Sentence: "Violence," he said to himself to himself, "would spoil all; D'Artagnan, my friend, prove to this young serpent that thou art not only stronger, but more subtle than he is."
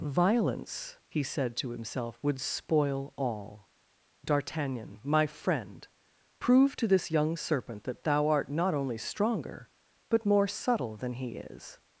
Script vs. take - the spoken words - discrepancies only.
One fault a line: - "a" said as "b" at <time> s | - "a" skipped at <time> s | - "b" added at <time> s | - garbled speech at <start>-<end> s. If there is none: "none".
- "to himself" skipped at 2.2 s